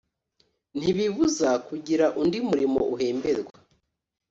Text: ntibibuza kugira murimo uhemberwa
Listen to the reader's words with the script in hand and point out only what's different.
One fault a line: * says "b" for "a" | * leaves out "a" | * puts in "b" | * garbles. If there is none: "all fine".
* puts in "undi"